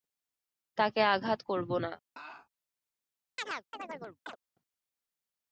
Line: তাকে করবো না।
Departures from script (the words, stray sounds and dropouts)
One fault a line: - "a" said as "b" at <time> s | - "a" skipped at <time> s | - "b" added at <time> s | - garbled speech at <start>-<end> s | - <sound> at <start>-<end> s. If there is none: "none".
- "আঘাত" added at 1.1 s
- laugh at 2.2-2.5 s
- chirp at 3.4-4.4 s